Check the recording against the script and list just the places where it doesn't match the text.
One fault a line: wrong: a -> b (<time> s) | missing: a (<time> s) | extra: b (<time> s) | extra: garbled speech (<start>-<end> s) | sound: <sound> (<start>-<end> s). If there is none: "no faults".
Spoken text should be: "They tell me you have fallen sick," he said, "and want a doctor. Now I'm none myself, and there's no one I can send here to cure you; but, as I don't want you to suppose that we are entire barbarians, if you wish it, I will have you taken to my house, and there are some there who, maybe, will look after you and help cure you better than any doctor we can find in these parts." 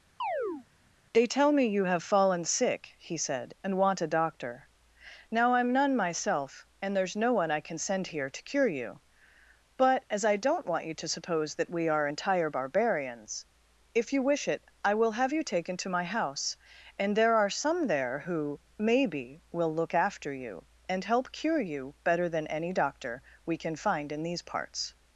sound: chirp (0.2-0.7 s)